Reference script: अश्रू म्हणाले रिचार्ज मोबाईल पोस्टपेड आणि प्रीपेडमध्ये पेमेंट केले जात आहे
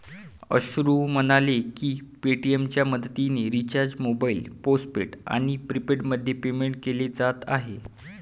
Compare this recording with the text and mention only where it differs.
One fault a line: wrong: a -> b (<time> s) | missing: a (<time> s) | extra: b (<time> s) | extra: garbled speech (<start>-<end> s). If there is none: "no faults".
extra: की पेटीएमच्या मदतीने (1.7 s)